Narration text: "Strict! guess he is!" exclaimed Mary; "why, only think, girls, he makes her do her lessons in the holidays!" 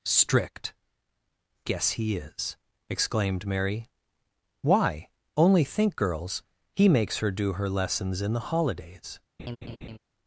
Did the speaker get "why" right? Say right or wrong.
right